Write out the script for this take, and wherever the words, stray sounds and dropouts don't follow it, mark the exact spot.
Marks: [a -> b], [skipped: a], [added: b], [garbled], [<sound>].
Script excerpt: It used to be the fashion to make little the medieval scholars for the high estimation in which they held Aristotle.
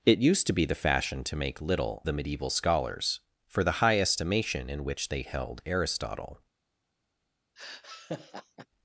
It used to be the fashion to make little the medieval scholars for the high estimation in which they held Aristotle. [laugh]